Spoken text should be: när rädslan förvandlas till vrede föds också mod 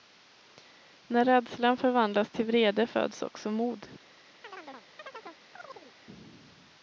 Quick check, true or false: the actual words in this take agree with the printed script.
true